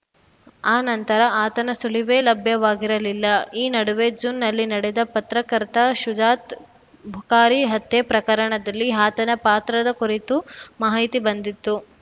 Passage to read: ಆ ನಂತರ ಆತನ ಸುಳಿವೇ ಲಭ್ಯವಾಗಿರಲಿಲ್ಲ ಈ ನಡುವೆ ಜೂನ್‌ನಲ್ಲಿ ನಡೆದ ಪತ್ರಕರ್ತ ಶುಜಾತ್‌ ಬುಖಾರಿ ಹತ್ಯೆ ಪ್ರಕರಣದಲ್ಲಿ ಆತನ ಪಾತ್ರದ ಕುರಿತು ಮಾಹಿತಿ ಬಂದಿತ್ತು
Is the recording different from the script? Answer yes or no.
no